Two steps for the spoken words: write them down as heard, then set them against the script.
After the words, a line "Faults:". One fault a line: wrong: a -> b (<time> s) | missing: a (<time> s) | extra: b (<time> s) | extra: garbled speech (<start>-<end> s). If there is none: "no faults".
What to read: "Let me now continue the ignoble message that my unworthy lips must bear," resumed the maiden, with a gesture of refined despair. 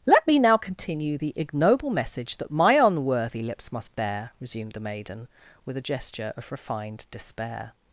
"Let me now continue the ignoble message that my unworthy lips must bear," resumed the maiden, with a gesture of refined despair.
Faults:
no faults